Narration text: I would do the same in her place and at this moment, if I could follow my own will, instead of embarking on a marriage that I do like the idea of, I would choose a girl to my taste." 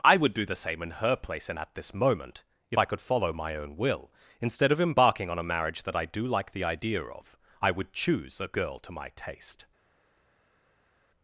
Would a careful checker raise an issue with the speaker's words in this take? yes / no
no